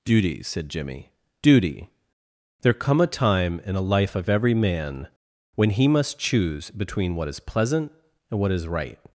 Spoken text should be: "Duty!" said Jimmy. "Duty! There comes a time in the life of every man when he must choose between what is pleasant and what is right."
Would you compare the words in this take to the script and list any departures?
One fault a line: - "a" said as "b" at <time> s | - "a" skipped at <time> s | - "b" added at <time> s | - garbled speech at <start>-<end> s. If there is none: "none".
- "comes" said as "come" at 2.7 s
- "the" said as "a" at 3.8 s